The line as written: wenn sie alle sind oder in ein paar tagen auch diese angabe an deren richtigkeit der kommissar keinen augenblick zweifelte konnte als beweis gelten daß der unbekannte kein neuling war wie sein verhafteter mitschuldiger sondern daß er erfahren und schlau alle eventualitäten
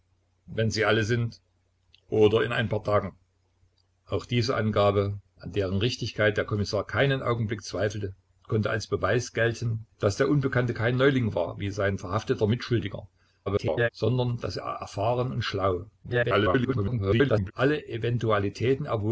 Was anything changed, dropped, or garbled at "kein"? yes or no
no